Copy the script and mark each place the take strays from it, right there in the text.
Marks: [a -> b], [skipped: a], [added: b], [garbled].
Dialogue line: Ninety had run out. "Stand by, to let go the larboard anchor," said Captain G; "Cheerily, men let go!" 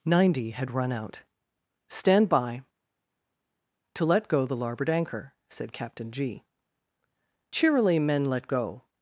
Ninety had run out. "Stand by, to let go the larboard anchor," said Captain G; "Cheerily, men let go!"